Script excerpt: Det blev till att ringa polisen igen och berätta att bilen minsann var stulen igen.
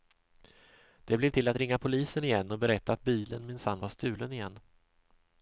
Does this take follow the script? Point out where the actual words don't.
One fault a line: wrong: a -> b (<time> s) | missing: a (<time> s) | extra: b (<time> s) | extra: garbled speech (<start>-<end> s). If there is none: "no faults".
no faults